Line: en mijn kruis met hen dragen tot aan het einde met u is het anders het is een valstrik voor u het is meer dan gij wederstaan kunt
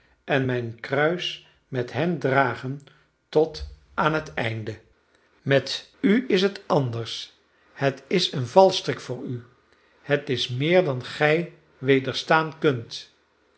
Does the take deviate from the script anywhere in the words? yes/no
no